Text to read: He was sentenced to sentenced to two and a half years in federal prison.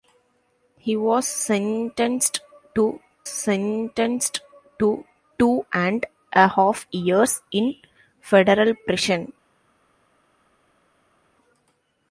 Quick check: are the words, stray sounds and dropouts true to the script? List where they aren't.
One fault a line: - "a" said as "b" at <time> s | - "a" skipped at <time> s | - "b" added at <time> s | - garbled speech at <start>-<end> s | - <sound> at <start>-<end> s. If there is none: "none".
none